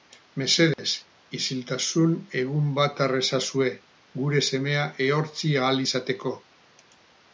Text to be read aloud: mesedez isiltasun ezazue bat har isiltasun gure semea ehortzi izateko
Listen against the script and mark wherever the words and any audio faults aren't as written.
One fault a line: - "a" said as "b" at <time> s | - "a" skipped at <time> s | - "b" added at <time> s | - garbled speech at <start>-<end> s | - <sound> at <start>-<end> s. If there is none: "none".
- dropout at 0.7-0.8 s
- "ezazue" said as "egun" at 2.4 s
- "isiltasun" said as "ezazue" at 3.2 s
- "ahal" added at 5.7 s